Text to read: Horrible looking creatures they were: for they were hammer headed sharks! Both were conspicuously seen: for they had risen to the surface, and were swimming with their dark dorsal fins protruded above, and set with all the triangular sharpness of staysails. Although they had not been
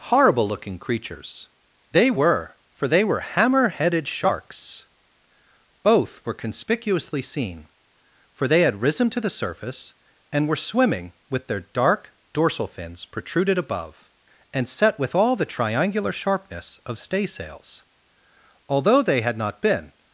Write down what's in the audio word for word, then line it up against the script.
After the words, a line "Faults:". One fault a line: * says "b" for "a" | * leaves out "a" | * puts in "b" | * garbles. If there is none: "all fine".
Horrible looking creatures they were: for they were hammer headed sharks! Both were conspicuously seen: for they had risen to the surface, and were swimming with their dark dorsal fins protruded above, and set with all the triangular sharpness of staysails. Although they had not been
Faults:
all fine